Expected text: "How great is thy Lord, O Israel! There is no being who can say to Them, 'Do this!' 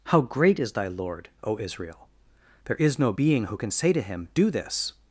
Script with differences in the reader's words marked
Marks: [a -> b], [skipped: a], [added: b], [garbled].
"How great is thy Lord, O Israel! There is no being who can say to [Them, -> Him] 'Do this!'